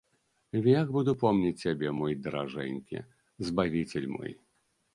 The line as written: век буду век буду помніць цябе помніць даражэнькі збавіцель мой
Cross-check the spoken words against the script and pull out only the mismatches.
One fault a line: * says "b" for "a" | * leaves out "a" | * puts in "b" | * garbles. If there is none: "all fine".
* leaves out "век буду"
* says "мой" for "помніць"